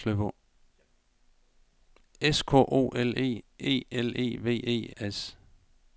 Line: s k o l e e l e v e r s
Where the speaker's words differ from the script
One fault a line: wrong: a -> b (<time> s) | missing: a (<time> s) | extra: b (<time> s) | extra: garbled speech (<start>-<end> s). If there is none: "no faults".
missing: r (4.9 s)